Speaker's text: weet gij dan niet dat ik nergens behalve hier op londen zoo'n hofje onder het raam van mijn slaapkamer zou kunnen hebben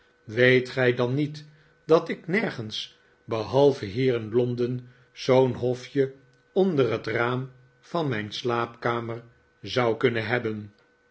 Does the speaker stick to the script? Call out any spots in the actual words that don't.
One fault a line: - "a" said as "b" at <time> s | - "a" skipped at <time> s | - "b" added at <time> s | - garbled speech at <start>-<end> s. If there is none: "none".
- "op" said as "in" at 4.1 s